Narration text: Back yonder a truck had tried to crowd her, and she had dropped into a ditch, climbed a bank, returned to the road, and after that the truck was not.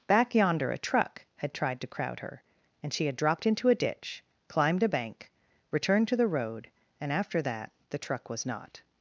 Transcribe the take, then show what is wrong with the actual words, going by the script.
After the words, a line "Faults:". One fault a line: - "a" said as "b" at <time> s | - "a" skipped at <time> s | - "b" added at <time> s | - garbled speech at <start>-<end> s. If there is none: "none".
Back yonder a truck had tried to crowd her, and she had dropped into a ditch, climbed a bank, returned to the road, and after that the truck was not.
Faults:
none